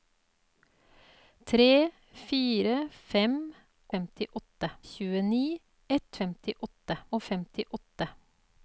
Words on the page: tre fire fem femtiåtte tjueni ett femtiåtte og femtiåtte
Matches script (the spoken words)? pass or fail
pass